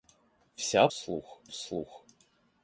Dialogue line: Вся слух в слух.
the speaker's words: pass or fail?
pass